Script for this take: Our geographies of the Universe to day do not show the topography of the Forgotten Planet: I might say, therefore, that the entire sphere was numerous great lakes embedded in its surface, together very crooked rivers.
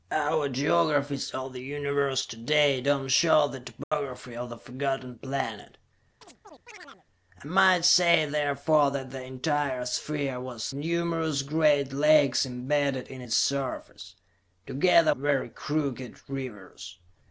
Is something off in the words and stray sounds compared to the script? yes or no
yes